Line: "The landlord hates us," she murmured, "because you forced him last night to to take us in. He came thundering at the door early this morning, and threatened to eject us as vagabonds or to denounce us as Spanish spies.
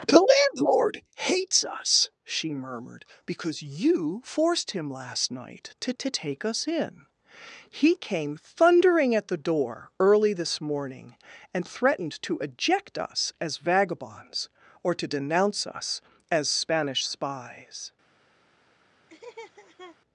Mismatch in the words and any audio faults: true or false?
true